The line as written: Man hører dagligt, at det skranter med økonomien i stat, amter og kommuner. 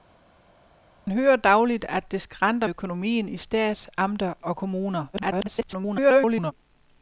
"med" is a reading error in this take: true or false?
true